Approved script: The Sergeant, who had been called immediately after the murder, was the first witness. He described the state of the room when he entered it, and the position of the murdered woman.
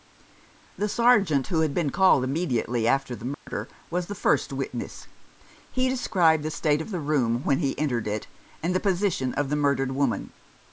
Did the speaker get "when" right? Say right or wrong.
right